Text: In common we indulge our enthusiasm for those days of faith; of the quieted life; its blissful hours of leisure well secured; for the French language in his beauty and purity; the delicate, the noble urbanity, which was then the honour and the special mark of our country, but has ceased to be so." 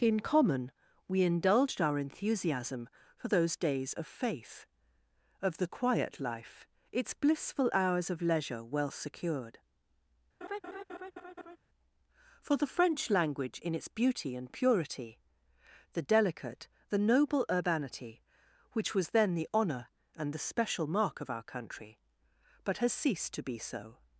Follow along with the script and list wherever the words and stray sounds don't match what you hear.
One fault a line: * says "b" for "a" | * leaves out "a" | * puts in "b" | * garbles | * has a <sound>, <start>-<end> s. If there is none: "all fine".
* says "indulged" for "indulge"
* says "quiet" for "quieted"
* has a laugh, 10.4-11.6 s
* says "its" for "his"